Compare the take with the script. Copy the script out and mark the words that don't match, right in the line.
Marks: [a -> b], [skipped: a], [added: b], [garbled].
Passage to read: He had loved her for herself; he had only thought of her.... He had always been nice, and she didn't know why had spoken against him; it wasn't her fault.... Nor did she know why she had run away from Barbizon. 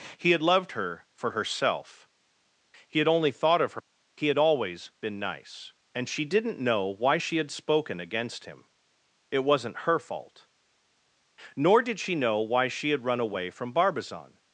He had loved her for herself; he had only thought of her.... He had always been nice, and she didn't know why [added: she] had spoken against him; it wasn't her fault.... Nor did she know why she had run away from Barbizon.